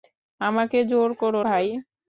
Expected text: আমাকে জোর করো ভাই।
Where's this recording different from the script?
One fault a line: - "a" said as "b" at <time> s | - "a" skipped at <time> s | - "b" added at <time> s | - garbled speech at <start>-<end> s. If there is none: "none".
none